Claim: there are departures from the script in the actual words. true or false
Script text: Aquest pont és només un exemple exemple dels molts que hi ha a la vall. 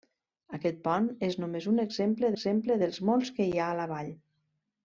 false